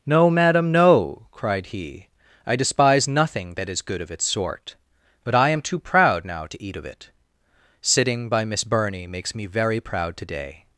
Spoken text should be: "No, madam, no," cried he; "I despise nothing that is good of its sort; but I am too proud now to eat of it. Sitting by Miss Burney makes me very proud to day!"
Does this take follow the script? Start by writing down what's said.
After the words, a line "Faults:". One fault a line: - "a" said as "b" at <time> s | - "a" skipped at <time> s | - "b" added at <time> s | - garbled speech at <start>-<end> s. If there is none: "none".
"No, madam, no," cried he; "I despise nothing that is good of its sort; but I am too proud now to eat of it. Sitting by Miss Burney makes me very proud to day!"
Faults:
none